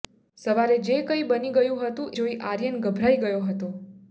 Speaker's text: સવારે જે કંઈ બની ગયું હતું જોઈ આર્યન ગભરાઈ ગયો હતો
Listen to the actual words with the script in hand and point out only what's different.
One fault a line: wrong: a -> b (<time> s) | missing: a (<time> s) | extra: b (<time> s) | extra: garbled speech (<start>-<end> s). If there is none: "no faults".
no faults